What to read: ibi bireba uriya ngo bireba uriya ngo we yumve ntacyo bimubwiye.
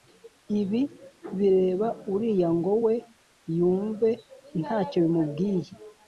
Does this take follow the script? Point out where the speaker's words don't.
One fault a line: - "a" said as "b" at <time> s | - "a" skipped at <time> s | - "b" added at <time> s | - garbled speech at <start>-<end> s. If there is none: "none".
- "bireba uriya ngo" skipped at 2.7 s